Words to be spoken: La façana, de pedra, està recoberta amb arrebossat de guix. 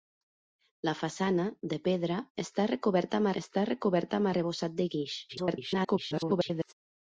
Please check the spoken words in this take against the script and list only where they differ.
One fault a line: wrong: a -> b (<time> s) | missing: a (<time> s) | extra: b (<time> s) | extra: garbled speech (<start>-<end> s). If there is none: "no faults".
extra: està recoberta amb (3.4 s)
extra: garbled speech (5.3-6.7 s)